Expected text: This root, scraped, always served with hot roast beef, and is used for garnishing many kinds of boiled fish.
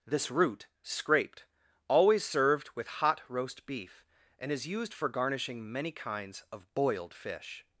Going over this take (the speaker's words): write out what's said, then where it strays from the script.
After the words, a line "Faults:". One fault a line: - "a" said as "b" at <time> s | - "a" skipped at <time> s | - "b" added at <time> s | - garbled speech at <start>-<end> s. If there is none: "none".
This root, scraped, always served with hot roast beef, and is used for garnishing many kinds of boiled fish.
Faults:
none